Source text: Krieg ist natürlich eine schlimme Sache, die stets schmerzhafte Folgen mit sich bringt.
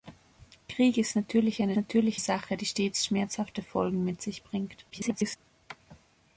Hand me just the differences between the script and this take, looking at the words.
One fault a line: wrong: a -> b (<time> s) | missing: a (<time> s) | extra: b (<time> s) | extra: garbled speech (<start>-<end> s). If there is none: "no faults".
wrong: schlimme -> natürlich (1.8 s)
extra: garbled speech (4.9-5.4 s)